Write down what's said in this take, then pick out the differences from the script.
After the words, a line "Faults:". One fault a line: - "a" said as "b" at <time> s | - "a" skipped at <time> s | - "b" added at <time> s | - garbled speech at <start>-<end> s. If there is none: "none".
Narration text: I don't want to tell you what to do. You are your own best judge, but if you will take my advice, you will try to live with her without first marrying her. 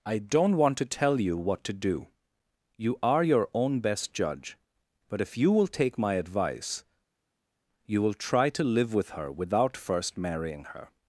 I don't want to tell you what to do. You are your own best judge, but if you will take my advice, you will try to live with her without first marrying her.
Faults:
none